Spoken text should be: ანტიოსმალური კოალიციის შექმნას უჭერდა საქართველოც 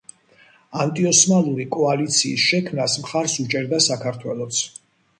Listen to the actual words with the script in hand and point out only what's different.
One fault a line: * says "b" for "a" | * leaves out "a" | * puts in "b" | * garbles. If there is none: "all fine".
* puts in "მხარს"